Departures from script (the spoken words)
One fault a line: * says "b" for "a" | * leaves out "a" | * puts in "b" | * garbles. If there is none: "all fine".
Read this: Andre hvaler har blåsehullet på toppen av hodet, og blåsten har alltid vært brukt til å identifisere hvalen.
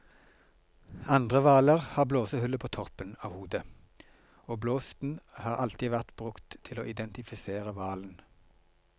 all fine